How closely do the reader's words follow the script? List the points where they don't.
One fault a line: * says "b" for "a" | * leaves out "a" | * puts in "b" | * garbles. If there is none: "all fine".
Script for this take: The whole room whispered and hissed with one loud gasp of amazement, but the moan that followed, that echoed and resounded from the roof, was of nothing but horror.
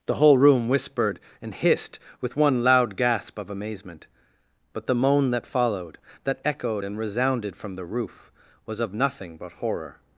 all fine